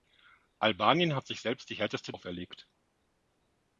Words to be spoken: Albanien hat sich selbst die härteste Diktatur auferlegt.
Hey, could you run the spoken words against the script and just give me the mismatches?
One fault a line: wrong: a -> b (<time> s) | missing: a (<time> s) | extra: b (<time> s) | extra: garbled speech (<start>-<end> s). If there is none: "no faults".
missing: Diktatur (2.1 s)